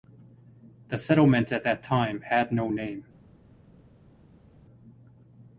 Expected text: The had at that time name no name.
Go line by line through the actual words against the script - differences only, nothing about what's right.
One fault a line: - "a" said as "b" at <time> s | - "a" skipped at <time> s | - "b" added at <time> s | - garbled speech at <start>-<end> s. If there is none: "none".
- "had" said as "settlement" at 1.0 s
- "name" said as "had" at 2.2 s